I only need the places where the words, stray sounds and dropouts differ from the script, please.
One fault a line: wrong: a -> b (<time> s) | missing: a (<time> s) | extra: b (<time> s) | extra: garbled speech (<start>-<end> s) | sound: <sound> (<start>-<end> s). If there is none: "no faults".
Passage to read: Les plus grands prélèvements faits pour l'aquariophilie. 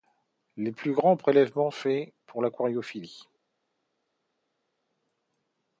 no faults